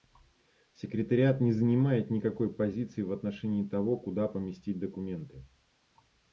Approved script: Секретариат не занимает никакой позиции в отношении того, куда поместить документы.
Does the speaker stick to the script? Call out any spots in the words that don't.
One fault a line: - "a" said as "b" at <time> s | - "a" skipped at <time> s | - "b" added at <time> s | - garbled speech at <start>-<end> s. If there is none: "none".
none